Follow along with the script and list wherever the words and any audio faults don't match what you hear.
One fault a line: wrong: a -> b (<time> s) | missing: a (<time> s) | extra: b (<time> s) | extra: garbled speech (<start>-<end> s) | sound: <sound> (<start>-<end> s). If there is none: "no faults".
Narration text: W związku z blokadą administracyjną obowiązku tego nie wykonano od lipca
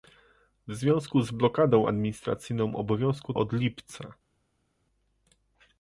missing: tego nie wykonano (3.3 s)